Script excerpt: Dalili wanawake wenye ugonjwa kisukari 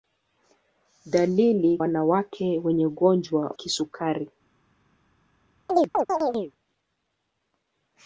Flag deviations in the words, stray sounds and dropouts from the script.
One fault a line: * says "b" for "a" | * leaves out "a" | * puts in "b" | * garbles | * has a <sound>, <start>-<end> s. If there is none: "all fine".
* has a chirp, 5.7-6.5 s